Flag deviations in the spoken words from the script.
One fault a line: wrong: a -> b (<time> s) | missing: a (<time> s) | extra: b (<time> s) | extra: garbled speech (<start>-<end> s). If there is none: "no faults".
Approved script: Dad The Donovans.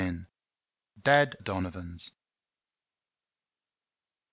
no faults